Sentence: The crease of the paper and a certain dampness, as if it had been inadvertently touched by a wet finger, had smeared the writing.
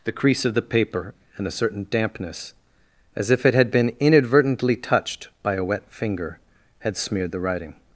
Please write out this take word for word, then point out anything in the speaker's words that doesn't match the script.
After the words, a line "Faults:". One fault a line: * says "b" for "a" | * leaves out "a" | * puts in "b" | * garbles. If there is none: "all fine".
The crease of the paper and a certain dampness, as if it had been inadvertently touched by a wet finger, had smeared the writing.
Faults:
all fine